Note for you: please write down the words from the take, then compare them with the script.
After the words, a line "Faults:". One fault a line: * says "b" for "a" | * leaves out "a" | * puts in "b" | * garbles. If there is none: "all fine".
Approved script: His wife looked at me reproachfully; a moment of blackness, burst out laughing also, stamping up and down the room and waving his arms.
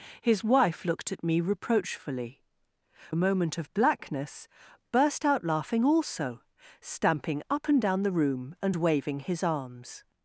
His wife looked at me reproachfully; a moment of blackness, burst out laughing also, stamping up and down the room and waving his arms.
Faults:
all fine